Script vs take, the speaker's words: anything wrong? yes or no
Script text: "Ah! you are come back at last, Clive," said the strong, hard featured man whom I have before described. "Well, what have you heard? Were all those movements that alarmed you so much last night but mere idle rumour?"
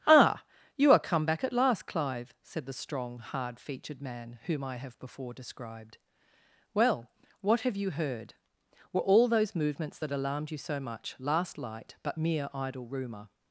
yes